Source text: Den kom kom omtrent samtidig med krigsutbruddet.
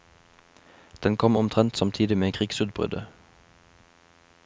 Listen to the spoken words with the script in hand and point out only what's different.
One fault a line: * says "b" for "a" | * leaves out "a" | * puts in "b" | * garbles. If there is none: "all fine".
* leaves out "kom"